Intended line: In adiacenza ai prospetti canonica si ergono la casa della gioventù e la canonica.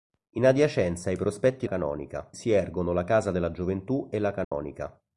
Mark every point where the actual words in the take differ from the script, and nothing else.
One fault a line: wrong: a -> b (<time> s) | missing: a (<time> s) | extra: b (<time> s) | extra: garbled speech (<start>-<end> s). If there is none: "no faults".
no faults